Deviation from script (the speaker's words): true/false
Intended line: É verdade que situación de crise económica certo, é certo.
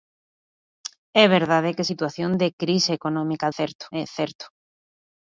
false